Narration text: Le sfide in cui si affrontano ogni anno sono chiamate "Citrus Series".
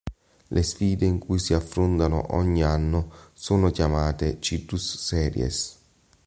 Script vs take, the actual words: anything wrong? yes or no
no